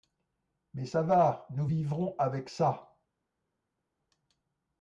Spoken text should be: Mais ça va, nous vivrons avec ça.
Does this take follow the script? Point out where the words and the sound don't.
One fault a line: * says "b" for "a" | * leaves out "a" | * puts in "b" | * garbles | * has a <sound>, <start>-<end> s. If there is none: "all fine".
all fine